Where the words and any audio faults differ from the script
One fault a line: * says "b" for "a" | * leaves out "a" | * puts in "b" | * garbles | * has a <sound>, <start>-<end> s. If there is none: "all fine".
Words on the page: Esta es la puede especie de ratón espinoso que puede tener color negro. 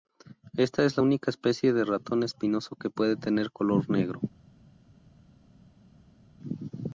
* says "única" for "puede"